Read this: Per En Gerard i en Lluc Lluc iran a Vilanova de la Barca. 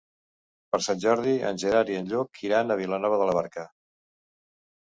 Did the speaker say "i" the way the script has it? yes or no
yes